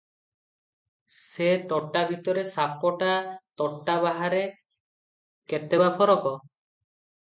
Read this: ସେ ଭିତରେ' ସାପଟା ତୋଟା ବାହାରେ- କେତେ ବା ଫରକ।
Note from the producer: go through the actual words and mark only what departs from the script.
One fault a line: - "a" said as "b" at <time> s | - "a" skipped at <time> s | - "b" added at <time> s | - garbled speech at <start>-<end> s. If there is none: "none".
- "ତୋଟା" added at 1.7 s